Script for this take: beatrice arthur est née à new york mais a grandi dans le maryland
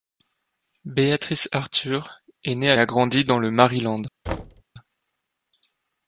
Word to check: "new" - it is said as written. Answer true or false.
false